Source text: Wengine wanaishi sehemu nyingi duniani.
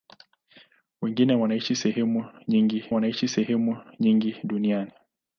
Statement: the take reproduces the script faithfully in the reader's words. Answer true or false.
false